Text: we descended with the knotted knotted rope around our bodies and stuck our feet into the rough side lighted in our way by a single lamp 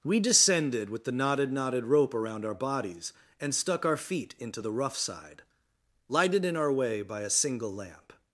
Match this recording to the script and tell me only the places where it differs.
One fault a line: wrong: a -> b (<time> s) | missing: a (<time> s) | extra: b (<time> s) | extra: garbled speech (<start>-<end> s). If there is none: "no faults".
no faults